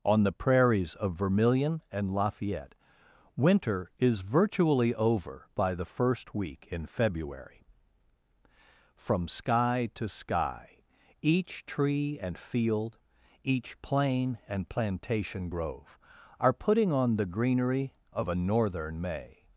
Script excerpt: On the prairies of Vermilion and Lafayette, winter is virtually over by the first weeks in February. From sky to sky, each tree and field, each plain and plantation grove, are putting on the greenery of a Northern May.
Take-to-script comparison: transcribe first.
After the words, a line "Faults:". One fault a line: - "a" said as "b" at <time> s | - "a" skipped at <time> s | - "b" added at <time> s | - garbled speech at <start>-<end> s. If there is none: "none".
On the prairies of Vermilion and Lafayette, winter is virtually over by the first week in February. From sky to sky, each tree and field, each plain and plantation grove, are putting on the greenery of a Northern May.
Faults:
- "weeks" said as "week" at 6.3 s